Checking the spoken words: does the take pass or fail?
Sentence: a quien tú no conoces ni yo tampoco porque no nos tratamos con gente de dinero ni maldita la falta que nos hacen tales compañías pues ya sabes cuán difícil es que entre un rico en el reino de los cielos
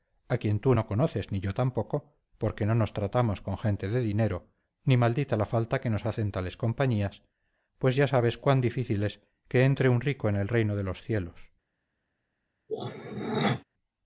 pass